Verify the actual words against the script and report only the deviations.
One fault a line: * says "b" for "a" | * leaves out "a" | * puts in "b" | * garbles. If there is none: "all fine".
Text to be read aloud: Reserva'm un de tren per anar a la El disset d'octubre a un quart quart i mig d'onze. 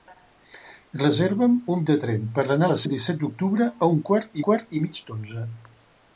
all fine